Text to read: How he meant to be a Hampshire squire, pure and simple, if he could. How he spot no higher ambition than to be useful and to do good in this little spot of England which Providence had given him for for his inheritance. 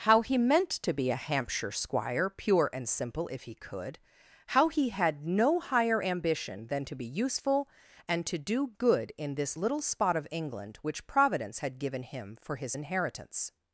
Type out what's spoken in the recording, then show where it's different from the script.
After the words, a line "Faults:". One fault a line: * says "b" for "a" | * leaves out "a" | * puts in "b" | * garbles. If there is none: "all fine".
How he meant to be a Hampshire squire, pure and simple, if he could. How he had no higher ambition than to be useful and to do good in this little spot of England which Providence had given him for his inheritance.
Faults:
* says "had" for "spot"
* leaves out "for"